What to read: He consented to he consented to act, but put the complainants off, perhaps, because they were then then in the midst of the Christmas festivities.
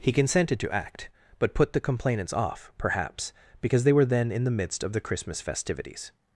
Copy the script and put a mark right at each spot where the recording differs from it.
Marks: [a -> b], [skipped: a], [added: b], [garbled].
He consented to [skipped: he consented to] act, but put the complainants off, perhaps, because they were then [skipped: then] in the midst of the Christmas festivities.